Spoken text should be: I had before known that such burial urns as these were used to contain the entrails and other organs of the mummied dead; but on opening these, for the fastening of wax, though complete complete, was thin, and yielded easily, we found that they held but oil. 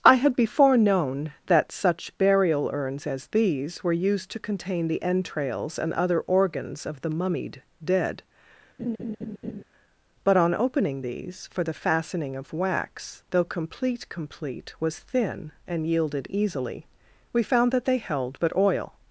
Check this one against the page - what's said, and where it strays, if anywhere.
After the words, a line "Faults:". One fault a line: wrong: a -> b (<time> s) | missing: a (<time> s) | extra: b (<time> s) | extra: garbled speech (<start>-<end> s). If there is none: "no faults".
I had before known that such burial urns as these were used to contain the entrails and other organs of the mummied dead; but on opening these, for the fastening of wax, though complete complete, was thin, and yielded easily, we found that they held but oil.
Faults:
no faults